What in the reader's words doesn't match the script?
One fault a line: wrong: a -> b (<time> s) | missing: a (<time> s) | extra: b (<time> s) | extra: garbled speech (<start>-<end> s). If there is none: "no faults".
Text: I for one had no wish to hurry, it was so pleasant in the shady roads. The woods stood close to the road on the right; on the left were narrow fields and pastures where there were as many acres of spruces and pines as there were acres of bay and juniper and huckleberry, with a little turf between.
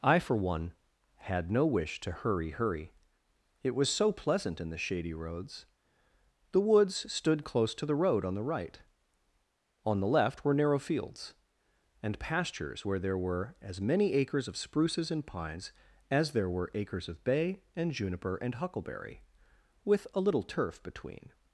extra: hurry (2.5 s)